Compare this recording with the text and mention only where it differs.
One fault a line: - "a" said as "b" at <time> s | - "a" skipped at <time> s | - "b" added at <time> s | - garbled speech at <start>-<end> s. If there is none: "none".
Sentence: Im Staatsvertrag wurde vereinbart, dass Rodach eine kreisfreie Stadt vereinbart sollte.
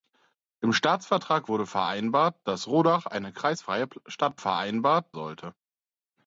none